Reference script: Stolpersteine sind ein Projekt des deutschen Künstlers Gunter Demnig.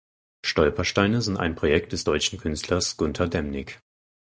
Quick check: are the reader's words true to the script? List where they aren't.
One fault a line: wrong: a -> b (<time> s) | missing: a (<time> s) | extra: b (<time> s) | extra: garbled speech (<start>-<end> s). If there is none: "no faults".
no faults